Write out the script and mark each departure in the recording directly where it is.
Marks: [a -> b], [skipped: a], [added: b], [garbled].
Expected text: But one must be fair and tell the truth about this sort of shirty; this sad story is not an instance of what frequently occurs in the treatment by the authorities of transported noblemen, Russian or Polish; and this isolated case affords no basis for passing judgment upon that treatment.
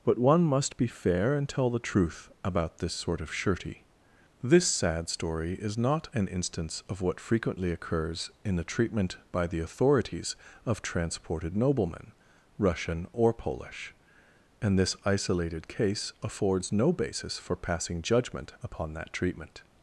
But one must be fair and tell the truth about this sort of shirty; this sad story is not an instance of what frequently occurs in the treatment by the authorities of transported noblemen, Russian or Polish; and this isolated case affords no basis for passing judgment upon that treatment.